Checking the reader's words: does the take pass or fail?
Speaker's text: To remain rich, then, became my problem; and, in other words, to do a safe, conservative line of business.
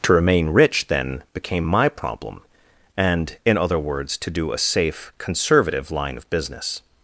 pass